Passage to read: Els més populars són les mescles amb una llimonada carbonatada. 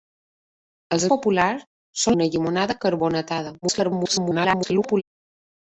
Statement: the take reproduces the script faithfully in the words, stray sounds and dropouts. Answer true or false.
false